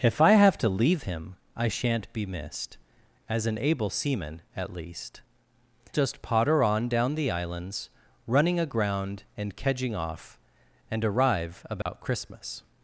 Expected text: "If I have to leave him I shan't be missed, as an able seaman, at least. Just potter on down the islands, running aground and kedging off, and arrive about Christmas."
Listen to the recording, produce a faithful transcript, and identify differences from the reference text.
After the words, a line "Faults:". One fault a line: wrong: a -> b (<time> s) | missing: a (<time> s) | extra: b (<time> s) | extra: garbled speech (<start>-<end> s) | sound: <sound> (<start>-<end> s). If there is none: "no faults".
"If I have to leave him I shan't be missed, as an able seaman, at least. Just potter on down the islands, running aground and kedging off, and arrive about Christmas."
Faults:
sound: dropout (11.8-11.9 s)